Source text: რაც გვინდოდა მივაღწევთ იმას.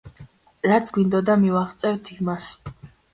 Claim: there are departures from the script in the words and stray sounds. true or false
false